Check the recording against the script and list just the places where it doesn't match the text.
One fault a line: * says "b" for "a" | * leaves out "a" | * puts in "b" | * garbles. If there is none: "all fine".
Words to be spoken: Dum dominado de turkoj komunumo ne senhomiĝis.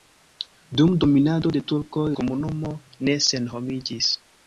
all fine